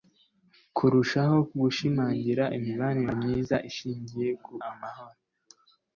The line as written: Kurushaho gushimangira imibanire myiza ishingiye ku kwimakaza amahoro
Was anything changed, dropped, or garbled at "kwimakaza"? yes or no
yes